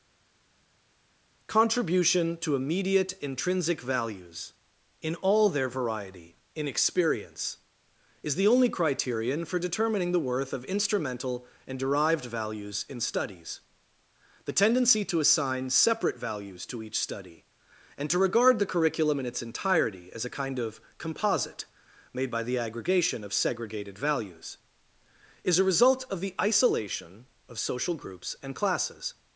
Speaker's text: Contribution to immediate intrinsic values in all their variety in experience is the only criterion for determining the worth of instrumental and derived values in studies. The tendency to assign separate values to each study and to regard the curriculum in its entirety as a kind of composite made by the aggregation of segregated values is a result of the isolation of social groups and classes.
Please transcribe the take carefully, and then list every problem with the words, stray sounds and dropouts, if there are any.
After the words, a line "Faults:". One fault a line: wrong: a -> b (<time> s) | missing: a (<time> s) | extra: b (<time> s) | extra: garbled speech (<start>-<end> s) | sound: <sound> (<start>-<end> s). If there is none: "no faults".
Contribution to immediate intrinsic values in all their variety in experience is the only criterion for determining the worth of instrumental and derived values in studies. The tendency to assign separate values to each study and to regard the curriculum in its entirety as a kind of composite made by the aggregation of segregated values is a result of the isolation of social groups and classes.
Faults:
no faults